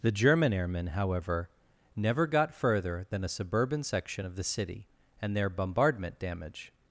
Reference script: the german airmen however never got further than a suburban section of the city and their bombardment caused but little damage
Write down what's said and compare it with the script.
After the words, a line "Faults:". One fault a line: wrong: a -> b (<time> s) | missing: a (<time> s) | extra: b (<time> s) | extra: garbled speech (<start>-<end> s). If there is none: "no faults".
the german airmen however never got further than a suburban section of the city and their bombardment damage
Faults:
missing: caused but little (6.2 s)